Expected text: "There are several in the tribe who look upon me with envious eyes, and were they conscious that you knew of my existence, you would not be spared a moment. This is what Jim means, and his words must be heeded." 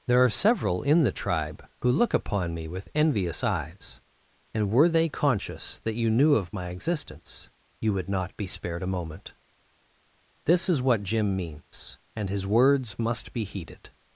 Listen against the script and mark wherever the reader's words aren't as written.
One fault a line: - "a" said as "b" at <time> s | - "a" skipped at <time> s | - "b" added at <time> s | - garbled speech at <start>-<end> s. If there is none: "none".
none